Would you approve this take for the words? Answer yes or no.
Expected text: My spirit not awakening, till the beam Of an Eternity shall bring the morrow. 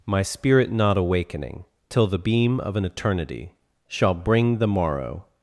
yes